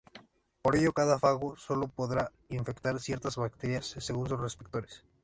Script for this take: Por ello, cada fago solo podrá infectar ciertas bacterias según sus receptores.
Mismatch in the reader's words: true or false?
false